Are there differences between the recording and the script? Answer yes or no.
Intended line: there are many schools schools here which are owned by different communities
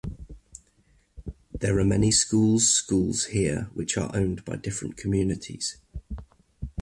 no